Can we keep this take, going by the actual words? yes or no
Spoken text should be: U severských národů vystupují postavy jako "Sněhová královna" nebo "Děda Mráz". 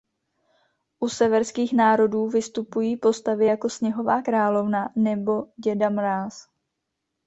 yes